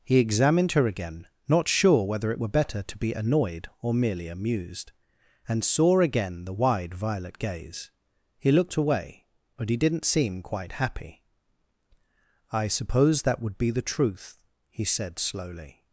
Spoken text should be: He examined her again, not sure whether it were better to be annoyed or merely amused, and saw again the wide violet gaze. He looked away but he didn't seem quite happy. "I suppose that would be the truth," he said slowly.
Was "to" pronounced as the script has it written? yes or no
yes